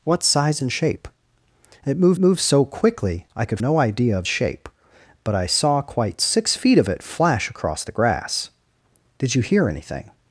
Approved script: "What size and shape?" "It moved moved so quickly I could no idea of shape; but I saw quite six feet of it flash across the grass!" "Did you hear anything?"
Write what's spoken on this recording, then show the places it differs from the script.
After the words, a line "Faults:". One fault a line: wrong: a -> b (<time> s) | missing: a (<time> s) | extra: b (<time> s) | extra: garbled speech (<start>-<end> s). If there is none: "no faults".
"What size and shape?" "It moved moved so quickly I could no idea of shape; but I saw quite six feet of it flash across the grass!" "Did you hear anything?"
Faults:
no faults